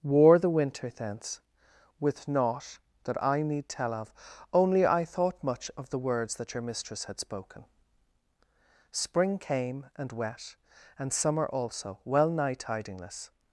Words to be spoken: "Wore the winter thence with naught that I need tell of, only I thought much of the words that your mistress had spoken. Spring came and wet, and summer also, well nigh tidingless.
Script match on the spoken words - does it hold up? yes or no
yes